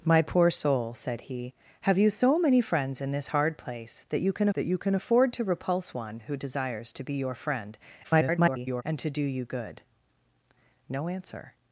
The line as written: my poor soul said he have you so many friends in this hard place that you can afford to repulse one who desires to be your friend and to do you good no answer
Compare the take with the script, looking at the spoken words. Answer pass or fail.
fail